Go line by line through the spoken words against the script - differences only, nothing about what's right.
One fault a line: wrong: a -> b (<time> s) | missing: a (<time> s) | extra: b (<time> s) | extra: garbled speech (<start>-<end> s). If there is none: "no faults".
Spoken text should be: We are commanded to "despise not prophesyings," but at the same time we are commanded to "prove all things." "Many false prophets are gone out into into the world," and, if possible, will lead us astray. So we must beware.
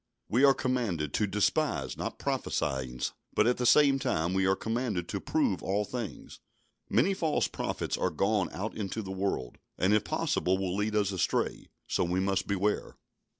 missing: into (9.0 s)